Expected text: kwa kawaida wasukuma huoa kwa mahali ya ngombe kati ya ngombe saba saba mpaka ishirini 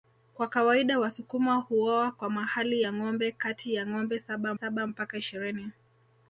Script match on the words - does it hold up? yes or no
yes